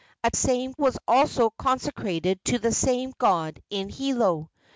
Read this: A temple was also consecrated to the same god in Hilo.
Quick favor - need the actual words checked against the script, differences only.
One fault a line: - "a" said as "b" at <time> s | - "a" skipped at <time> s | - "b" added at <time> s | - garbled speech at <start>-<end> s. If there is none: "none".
- "temple" said as "same" at 0.3 s